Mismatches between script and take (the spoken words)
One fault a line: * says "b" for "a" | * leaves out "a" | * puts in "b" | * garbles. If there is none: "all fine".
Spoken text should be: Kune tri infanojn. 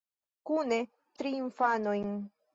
all fine